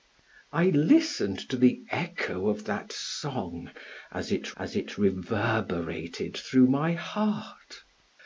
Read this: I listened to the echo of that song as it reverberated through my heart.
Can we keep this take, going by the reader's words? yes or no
no